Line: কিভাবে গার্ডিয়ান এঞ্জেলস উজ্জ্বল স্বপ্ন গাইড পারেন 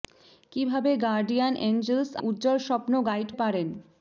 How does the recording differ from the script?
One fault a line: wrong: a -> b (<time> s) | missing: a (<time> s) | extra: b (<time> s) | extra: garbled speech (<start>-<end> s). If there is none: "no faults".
no faults